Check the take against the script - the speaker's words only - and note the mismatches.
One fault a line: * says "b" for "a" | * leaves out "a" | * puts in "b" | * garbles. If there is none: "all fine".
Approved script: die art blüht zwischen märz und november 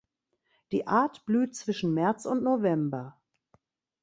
all fine